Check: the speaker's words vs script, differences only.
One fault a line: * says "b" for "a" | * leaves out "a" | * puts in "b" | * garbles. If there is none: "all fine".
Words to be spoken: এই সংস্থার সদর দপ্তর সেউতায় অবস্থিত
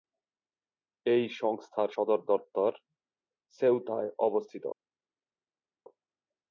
all fine